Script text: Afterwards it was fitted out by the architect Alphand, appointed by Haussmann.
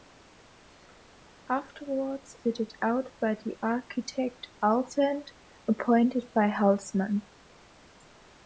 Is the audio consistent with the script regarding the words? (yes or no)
no